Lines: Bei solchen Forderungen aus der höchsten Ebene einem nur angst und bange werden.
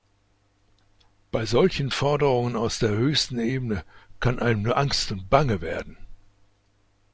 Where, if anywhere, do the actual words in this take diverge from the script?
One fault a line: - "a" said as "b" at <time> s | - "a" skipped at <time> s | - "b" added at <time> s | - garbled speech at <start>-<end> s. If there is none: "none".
- "kann" added at 4.2 s